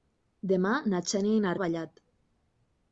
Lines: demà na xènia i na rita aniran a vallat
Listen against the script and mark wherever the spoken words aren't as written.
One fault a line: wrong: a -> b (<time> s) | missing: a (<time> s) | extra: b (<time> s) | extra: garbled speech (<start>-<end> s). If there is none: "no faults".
missing: rita aniran (1.5 s)